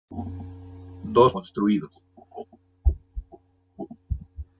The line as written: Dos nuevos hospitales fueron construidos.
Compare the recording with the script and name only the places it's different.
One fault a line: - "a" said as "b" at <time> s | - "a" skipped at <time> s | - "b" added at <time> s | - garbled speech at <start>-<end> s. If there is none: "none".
- "nuevos hospitales fueron" skipped at 1.4 s